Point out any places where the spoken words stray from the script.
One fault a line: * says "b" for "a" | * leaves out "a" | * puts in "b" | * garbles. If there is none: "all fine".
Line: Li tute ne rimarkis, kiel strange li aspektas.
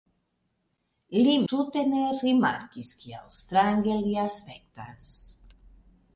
all fine